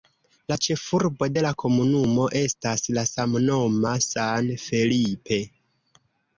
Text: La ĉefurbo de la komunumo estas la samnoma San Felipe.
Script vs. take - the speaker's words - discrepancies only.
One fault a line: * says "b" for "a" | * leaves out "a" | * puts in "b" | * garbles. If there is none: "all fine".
all fine